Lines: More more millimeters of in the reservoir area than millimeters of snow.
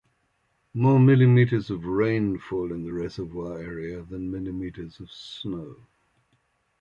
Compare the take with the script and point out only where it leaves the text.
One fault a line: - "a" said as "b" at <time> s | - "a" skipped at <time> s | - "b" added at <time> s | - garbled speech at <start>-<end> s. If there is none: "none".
- "more" skipped at 1.0 s
- "rain fall" added at 1.9 s